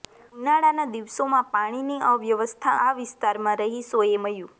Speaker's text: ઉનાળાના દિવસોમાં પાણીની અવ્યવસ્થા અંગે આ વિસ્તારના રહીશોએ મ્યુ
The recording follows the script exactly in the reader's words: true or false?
false